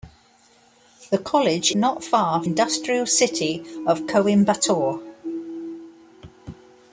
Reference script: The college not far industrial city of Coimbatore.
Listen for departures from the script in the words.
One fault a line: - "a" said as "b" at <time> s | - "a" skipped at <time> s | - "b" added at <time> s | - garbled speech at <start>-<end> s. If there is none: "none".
none